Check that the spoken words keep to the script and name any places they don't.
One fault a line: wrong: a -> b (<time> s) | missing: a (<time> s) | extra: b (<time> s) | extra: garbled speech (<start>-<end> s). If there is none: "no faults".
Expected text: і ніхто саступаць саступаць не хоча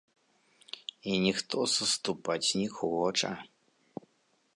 missing: саступаць (2.5 s)